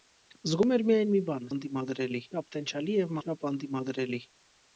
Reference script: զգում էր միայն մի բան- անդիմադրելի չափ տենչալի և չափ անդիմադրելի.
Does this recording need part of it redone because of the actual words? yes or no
no